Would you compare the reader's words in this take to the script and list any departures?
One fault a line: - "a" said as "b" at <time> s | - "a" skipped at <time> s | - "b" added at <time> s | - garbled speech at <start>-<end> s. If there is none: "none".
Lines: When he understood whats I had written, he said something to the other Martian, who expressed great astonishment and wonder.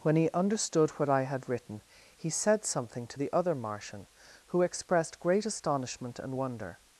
- "whats" said as "what" at 0.9 s